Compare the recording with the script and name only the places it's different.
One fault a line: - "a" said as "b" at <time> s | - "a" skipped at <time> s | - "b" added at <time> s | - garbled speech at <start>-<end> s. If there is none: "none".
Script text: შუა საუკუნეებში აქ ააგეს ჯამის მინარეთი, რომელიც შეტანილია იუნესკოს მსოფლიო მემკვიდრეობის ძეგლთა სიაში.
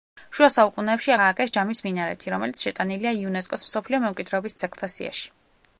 - "აქ" skipped at 1.1 s